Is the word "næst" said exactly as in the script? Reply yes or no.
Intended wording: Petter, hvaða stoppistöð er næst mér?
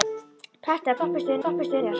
no